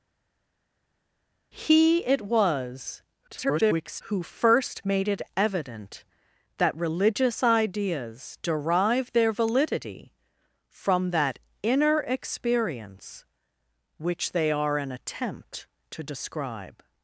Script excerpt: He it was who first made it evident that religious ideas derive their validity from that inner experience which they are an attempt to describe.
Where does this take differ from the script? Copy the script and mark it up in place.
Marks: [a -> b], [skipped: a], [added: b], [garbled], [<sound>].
He it was [garbled] who first made it evident that religious ideas derive their validity from that inner experience which they are an attempt to describe.